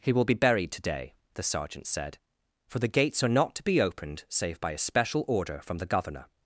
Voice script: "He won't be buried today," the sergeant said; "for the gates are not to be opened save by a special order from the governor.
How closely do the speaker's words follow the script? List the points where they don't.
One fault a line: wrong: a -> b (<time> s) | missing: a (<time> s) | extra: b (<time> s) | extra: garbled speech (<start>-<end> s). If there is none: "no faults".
wrong: won't -> will (0.1 s)